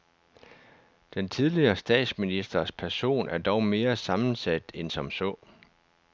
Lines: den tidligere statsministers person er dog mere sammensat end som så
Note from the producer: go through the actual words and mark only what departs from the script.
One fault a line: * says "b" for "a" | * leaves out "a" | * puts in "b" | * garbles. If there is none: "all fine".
all fine